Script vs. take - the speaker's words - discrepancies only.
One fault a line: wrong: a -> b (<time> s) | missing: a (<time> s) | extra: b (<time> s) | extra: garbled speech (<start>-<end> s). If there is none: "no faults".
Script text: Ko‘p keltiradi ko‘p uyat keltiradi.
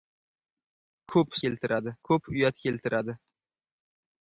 no faults